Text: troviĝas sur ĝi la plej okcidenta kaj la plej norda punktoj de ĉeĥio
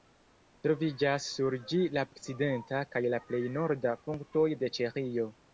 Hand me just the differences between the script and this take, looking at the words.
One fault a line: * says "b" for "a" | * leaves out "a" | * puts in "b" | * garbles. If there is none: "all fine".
* leaves out "plej"